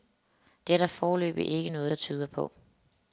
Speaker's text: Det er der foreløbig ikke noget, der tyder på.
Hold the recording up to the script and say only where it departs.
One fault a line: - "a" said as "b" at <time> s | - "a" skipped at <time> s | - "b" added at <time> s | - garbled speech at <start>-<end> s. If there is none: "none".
none